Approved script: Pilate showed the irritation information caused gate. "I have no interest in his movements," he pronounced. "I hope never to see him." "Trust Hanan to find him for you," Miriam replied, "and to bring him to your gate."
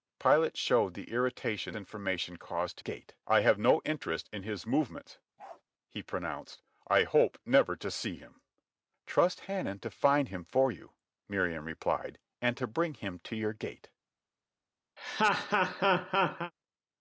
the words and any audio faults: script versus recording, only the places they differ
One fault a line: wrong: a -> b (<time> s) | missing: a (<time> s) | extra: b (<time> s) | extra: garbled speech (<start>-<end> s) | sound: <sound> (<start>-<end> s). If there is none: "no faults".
sound: bark (5.4-5.6 s)
sound: laugh (15.0-16.5 s)